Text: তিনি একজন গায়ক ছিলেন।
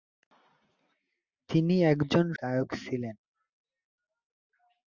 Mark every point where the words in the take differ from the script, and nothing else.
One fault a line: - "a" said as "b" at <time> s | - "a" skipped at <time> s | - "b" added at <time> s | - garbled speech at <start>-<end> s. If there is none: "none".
none